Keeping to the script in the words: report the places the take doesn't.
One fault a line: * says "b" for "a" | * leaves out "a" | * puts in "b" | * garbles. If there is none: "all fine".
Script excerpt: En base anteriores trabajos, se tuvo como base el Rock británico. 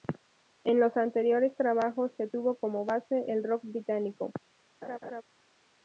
* says "los" for "base"